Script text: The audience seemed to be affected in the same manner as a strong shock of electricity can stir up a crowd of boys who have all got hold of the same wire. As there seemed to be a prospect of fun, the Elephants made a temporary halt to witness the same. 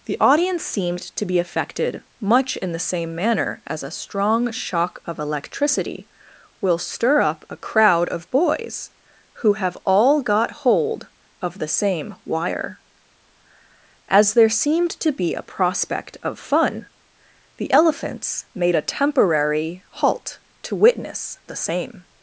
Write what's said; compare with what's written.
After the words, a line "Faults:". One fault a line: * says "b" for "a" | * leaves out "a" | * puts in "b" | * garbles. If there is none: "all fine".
The audience seemed to be affected much in the same manner as a strong shock of electricity will stir up a crowd of boys who have all got hold of the same wire. As there seemed to be a prospect of fun, the Elephants made a temporary halt to witness the same.
Faults:
* puts in "much"
* says "will" for "can"